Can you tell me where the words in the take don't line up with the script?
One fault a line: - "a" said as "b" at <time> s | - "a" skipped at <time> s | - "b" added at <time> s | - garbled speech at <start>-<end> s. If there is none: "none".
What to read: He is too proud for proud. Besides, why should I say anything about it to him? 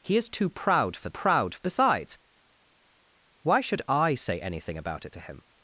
none